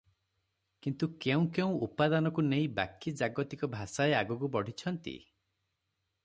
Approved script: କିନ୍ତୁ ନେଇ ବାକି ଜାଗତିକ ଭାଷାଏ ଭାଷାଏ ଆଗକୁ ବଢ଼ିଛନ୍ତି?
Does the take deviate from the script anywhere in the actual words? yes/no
yes